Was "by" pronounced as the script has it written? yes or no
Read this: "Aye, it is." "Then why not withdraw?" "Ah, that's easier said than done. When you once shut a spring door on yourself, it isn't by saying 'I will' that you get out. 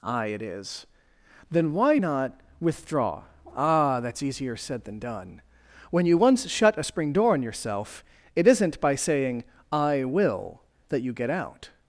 yes